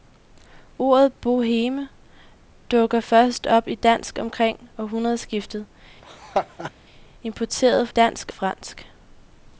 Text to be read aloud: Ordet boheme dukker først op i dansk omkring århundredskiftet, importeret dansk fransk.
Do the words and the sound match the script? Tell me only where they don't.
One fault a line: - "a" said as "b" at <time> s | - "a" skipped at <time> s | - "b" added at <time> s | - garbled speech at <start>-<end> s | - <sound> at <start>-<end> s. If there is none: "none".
- laugh at 6.0-6.7 s